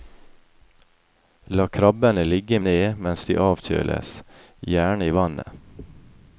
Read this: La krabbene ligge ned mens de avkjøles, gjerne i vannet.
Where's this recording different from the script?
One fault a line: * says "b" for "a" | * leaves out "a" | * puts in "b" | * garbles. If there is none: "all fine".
all fine